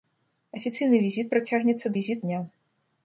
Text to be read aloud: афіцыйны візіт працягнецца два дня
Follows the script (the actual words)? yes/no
no